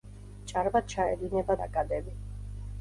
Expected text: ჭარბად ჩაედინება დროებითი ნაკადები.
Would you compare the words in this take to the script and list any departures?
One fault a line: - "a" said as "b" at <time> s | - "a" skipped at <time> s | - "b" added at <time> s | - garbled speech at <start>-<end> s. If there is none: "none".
- "დროებითი" skipped at 1.6 s